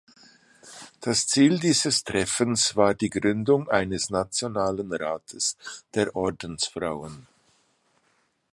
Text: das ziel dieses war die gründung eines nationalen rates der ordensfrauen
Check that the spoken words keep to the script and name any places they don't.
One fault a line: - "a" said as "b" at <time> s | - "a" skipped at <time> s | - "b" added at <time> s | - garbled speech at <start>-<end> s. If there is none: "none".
- "treffens" added at 2.0 s